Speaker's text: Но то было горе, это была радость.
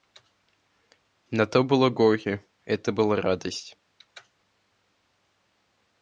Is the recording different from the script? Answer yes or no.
no